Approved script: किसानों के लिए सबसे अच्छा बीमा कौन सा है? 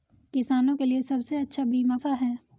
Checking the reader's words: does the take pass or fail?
fail